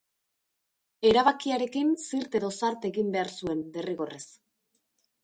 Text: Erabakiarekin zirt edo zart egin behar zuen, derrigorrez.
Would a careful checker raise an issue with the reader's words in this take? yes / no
no